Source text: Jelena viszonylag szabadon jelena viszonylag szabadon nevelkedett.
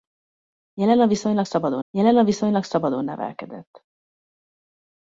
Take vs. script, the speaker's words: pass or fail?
pass